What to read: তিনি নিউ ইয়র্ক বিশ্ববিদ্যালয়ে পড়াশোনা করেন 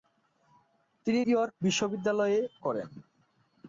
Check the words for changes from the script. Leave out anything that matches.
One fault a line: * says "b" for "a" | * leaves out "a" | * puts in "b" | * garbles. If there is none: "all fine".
* leaves out "নিউ"
* leaves out "পড়াশোনা"